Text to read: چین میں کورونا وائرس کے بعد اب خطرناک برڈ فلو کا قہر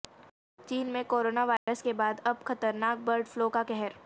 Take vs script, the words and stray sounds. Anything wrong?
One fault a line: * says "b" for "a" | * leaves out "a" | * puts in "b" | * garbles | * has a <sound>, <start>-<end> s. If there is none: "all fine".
* has a dropout, 1.6-1.7 s